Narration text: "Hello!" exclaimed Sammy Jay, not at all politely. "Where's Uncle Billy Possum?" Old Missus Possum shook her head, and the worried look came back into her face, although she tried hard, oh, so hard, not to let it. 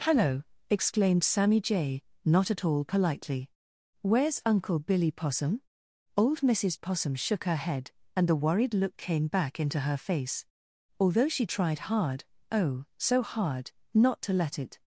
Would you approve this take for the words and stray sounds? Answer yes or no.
yes